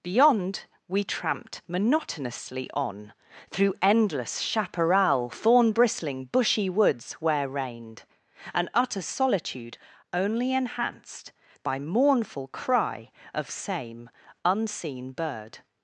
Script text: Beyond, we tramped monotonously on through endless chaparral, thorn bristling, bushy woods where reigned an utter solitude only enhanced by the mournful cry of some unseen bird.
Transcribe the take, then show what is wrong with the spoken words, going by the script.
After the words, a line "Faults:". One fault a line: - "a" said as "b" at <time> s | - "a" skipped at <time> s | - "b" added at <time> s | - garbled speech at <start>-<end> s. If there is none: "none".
Beyond, we tramped monotonously on through endless chaparral, thorn bristling, bushy woods where reigned an utter solitude only enhanced by mournful cry of same unseen bird.
Faults:
- "the" skipped at 11.8 s
- "some" said as "same" at 13.5 s